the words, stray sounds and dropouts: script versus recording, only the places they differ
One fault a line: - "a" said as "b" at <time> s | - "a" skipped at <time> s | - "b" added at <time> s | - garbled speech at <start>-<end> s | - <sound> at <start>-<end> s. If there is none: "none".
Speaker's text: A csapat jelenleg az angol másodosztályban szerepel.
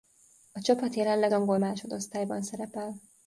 - "az" skipped at 1.3 s